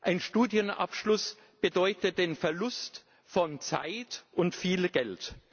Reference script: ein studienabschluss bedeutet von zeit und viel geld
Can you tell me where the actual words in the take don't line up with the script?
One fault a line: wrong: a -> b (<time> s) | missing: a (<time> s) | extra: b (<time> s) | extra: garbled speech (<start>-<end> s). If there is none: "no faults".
extra: den verlust (2.2 s)